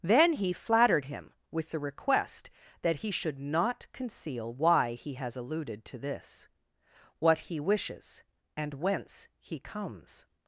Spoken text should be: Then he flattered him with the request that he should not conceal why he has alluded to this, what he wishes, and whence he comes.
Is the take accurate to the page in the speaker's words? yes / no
yes